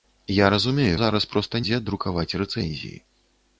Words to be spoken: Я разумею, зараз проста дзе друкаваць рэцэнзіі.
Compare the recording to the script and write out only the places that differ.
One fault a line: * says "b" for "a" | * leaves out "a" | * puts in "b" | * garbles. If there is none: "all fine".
all fine